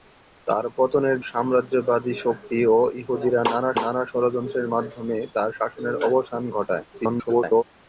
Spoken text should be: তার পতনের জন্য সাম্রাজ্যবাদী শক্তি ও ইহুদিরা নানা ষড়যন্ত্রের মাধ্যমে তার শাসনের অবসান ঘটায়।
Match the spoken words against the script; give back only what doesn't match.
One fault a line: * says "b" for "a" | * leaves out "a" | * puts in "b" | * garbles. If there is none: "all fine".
* leaves out "জন্য"
* puts in "নানা"
* garbles